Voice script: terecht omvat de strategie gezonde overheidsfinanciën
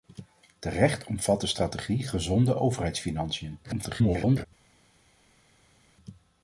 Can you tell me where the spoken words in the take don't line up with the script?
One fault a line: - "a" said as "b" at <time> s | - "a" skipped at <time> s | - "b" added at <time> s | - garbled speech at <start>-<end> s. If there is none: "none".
- garbled speech at 3.6-4.5 s